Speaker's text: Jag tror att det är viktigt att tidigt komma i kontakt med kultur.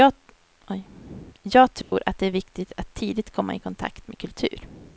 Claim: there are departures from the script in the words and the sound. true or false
true